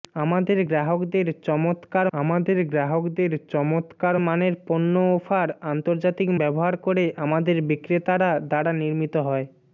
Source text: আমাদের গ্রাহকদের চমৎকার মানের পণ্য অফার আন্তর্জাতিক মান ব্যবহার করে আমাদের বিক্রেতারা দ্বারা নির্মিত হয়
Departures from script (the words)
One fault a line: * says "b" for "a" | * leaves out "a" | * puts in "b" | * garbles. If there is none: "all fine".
* puts in "আমাদের গ্রাহকদের চমৎকার"
* leaves out "মান"